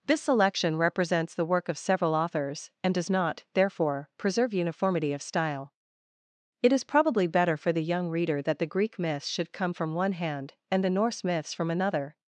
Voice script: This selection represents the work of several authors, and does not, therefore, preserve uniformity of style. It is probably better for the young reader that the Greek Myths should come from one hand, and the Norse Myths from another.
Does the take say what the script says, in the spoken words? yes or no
yes